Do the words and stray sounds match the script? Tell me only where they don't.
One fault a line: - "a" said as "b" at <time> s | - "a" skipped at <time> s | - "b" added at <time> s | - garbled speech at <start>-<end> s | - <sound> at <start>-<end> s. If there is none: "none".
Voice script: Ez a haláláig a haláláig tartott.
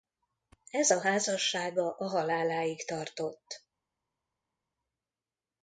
- "haláláig" said as "házassága" at 1.0 s